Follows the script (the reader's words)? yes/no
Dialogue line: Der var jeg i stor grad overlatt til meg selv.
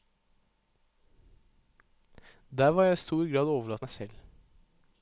no